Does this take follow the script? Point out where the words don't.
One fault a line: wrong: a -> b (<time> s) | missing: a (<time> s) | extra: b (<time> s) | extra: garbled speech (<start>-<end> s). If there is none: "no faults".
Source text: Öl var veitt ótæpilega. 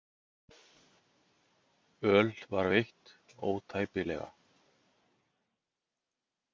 no faults